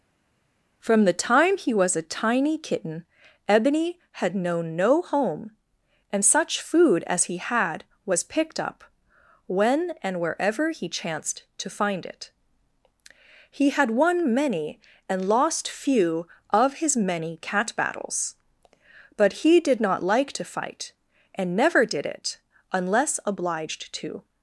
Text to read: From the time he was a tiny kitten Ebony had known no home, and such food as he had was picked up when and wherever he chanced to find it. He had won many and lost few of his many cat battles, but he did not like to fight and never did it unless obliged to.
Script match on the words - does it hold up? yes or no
yes